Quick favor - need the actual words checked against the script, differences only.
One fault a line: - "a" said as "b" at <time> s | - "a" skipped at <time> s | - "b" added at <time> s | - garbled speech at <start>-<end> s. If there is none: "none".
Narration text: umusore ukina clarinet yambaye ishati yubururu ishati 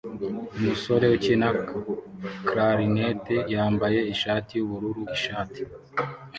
none